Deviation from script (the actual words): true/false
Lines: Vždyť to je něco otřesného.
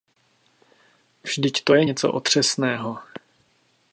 false